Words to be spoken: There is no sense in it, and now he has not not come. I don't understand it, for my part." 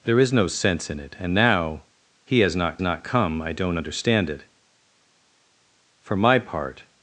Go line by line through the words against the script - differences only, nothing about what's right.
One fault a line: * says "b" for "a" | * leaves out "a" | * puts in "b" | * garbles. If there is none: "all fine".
all fine